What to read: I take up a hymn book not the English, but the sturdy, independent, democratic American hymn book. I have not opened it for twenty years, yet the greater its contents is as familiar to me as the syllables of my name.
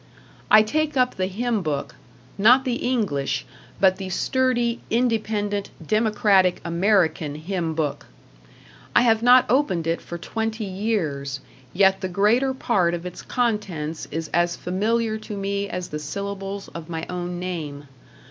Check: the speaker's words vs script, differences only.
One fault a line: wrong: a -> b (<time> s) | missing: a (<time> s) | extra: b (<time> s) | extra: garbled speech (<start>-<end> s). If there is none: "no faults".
wrong: a -> the (1.1 s)
extra: part of (12.6 s)
extra: own (17.1 s)